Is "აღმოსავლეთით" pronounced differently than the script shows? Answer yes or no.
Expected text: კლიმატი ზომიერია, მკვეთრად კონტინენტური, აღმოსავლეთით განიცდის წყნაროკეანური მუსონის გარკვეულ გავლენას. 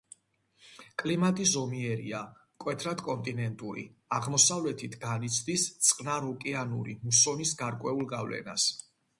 no